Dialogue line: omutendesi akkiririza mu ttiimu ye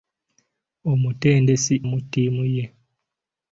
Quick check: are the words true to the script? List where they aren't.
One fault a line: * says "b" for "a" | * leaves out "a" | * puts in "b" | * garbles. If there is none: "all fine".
* leaves out "akkiririza"